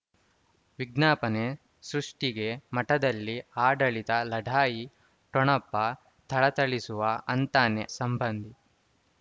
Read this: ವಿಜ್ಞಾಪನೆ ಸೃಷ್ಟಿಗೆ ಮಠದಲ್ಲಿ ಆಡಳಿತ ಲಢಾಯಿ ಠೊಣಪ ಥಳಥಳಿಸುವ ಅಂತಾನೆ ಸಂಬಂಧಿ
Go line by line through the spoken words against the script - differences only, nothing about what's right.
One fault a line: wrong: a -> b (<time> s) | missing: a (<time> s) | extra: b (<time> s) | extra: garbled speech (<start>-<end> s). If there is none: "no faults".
no faults